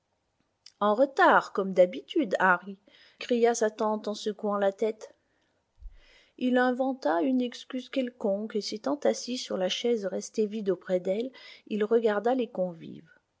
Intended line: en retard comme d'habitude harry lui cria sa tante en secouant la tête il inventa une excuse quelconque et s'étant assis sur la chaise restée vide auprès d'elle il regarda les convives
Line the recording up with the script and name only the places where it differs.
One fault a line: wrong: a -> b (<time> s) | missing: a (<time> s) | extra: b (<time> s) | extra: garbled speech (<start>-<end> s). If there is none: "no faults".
missing: lui (2.8 s)